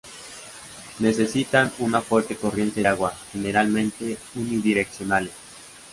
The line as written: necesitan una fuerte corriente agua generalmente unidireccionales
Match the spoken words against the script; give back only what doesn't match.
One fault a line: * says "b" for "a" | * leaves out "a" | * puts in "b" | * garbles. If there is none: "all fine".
all fine